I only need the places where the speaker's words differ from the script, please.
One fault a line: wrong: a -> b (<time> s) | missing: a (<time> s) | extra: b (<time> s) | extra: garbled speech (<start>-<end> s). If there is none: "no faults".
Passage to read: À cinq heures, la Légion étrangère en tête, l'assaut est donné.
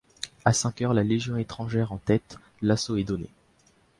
no faults